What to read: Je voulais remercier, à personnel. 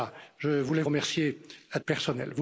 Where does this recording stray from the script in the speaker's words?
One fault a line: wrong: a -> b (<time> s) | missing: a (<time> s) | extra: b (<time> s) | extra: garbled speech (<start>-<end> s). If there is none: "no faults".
no faults